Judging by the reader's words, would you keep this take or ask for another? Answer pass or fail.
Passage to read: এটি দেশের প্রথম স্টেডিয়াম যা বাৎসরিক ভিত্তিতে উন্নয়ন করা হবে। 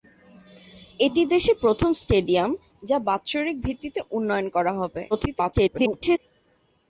fail